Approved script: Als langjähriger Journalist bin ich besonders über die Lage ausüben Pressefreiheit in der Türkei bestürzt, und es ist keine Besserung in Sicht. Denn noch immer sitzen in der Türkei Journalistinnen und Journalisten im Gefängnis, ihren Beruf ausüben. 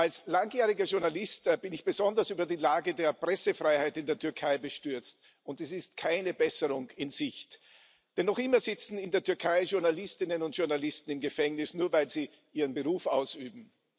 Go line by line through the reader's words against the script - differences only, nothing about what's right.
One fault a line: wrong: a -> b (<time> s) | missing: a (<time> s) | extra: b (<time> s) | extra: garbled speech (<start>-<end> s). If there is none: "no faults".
wrong: ausüben -> der (3.0 s)
extra: nur weil sie (11.8 s)